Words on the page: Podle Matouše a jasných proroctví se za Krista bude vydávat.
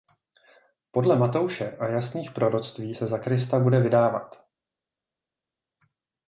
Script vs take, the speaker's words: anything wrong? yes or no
no